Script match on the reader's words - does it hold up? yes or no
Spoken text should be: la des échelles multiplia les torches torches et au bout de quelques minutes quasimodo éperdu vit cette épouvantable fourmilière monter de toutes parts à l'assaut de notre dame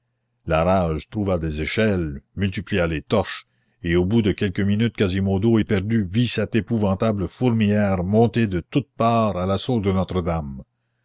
no